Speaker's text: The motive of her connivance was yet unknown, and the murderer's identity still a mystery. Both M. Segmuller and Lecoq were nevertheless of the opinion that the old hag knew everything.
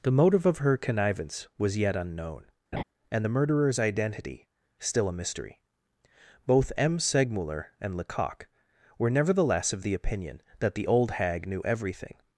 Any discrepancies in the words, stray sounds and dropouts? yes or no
yes